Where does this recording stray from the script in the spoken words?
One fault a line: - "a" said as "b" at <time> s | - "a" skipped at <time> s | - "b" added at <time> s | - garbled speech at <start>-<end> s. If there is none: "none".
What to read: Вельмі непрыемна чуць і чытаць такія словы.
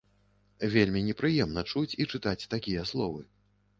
none